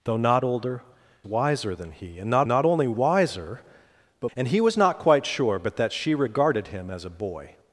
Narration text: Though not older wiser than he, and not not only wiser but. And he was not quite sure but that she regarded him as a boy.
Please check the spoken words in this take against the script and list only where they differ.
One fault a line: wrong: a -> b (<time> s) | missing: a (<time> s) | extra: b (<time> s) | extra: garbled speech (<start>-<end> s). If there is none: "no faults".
no faults